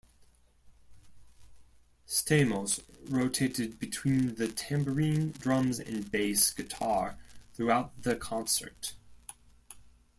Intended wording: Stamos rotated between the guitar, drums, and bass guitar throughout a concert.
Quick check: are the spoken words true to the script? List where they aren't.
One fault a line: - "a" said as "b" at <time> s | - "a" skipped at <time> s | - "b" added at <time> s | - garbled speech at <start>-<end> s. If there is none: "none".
- "guitar" said as "tambourine" at 4.5 s
- "a" said as "the" at 8.0 s